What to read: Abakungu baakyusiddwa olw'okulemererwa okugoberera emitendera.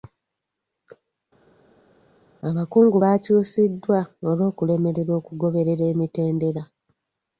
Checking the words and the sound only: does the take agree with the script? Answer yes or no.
yes